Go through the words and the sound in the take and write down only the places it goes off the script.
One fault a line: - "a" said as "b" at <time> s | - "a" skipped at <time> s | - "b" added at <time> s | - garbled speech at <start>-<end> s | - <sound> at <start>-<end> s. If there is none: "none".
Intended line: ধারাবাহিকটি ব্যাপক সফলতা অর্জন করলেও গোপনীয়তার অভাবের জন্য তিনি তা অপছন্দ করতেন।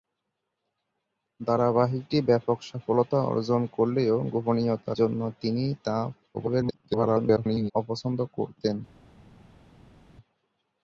- "অভাবের" skipped at 5.0 s
- garbled speech at 6.3-7.7 s